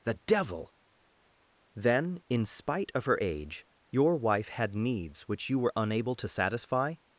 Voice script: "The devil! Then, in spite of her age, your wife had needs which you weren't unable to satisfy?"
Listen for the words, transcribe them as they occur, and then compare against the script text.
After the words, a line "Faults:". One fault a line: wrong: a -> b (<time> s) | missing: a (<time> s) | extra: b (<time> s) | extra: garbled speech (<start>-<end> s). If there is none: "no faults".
"The devil! Then, in spite of her age, your wife had needs which you were unable to satisfy?"
Faults:
wrong: weren't -> were (5.6 s)